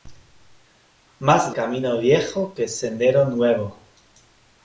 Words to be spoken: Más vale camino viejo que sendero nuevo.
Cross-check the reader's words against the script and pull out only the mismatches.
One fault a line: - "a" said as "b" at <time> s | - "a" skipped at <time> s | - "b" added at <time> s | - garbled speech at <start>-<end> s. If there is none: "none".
- "vale" skipped at 1.6 s